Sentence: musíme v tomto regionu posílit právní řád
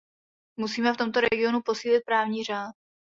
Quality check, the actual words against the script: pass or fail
pass